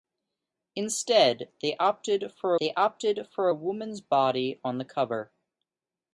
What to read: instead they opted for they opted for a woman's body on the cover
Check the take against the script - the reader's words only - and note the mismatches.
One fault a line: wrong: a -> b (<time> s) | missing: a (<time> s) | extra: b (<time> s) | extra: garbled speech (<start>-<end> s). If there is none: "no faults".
no faults